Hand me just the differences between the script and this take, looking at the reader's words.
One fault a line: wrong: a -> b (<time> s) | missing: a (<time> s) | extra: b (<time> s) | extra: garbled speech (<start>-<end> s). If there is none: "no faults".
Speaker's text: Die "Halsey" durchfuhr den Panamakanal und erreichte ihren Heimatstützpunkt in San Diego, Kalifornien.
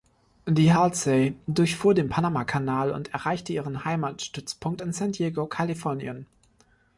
no faults